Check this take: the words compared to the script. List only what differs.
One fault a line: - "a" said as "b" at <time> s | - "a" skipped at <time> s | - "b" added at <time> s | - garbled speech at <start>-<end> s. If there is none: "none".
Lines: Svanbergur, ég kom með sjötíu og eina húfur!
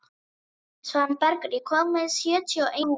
- "eina" skipped at 2.8 s